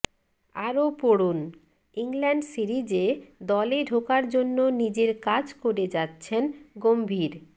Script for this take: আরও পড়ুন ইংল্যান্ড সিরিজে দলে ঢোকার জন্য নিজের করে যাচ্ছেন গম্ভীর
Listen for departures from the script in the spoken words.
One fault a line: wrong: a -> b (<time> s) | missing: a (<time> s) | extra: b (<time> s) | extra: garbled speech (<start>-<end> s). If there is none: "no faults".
extra: কাজ (5.3 s)